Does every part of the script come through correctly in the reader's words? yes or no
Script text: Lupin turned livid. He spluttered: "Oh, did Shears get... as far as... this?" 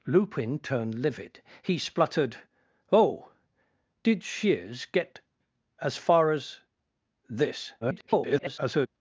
no